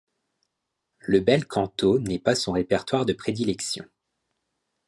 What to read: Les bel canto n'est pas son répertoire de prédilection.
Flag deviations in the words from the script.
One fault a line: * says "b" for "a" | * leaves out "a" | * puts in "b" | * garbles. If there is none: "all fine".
* says "Le" for "Les"